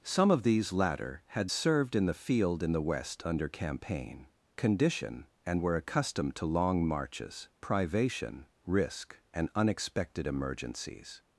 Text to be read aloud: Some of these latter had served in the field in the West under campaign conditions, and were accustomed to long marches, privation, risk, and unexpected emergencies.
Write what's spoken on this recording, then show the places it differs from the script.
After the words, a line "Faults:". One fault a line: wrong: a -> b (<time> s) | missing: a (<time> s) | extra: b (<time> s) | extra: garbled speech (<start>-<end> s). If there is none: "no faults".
Some of these latter had served in the field in the West under campaign condition, and were accustomed to long marches, privation, risk, and unexpected emergencies.
Faults:
wrong: conditions -> condition (4.6 s)